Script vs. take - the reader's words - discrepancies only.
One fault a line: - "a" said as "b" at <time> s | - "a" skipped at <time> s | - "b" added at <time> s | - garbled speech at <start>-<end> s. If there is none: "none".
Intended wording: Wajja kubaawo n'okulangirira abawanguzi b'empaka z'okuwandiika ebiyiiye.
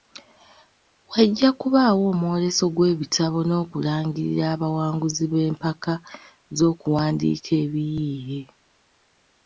- "omwoleso gw'ebitabo" added at 2.1 s